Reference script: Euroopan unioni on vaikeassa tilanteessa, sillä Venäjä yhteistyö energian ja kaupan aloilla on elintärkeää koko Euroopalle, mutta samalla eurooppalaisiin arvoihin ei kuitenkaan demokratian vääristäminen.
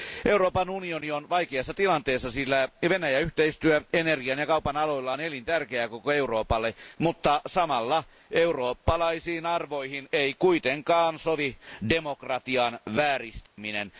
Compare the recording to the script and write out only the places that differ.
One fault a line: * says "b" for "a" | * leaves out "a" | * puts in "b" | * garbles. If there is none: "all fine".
* puts in "sovi"